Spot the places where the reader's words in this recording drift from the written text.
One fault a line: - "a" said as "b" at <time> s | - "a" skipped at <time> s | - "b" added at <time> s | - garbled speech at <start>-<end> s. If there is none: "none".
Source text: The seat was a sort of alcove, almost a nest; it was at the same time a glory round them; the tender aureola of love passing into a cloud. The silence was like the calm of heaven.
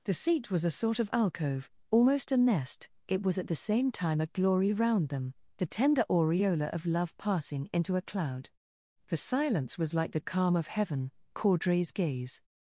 - "Caudray's gaze" added at 11.3 s